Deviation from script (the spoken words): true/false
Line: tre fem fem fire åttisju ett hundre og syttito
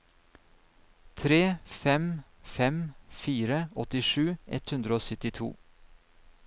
false